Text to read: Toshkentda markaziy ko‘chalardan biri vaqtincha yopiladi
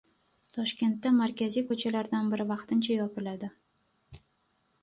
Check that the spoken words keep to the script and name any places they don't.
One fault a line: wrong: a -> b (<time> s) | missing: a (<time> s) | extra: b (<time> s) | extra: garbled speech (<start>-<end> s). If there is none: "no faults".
no faults